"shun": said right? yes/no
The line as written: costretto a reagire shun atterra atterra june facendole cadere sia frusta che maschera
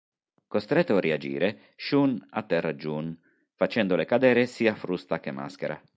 yes